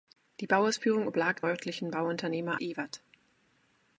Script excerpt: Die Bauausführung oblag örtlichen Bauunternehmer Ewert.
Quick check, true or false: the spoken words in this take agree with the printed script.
true